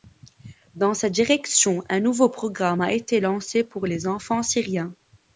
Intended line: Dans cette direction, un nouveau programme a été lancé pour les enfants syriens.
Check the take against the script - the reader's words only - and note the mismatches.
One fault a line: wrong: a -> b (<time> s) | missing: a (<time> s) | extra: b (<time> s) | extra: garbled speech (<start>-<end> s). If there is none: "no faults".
no faults